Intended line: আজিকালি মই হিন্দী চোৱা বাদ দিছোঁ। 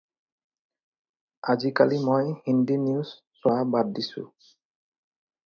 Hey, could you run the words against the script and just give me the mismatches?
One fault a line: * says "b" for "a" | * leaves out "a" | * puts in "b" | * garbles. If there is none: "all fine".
* puts in "নিউজ"